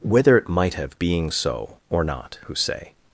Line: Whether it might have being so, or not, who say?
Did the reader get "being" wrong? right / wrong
right